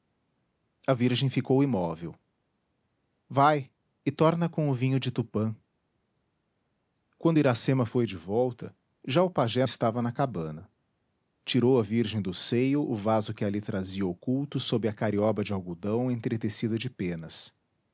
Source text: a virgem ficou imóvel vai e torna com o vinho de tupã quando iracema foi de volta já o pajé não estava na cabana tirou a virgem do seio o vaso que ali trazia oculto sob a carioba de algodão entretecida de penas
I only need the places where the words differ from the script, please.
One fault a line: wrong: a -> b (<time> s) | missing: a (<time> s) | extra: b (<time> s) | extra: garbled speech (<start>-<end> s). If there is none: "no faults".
missing: não (9.7 s)